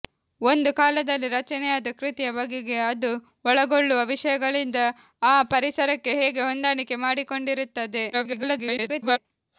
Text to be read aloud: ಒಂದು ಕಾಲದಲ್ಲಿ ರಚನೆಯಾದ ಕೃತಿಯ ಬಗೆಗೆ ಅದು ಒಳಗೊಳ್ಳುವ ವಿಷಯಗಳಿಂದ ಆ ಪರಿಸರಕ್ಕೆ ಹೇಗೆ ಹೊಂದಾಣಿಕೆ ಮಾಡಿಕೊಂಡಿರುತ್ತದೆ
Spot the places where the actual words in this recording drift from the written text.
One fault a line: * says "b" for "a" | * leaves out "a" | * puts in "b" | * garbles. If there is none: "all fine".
* garbles